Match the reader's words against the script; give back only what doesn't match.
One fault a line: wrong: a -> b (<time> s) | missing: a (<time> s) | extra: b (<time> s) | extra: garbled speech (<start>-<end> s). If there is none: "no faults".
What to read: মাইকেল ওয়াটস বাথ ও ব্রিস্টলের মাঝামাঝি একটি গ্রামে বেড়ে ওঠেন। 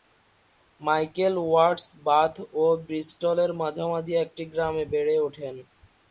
no faults